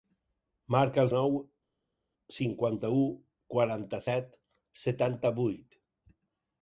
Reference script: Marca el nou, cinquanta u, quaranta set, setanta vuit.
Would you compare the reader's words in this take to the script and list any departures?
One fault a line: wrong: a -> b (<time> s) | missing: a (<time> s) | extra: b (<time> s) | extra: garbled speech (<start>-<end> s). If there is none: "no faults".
no faults